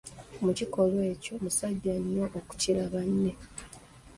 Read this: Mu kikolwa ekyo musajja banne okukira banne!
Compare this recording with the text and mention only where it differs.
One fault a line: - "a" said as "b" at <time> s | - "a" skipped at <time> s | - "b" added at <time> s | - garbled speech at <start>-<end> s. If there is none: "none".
- "banne" said as "nnyo" at 2.0 s